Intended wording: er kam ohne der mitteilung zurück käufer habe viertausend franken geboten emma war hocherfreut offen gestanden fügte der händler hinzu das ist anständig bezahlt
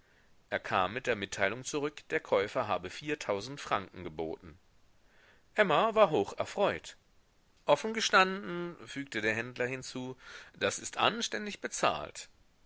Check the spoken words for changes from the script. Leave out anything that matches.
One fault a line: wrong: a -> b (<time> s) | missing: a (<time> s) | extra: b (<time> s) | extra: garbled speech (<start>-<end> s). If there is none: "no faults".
wrong: ohne -> mit (0.9 s)
extra: der (2.1 s)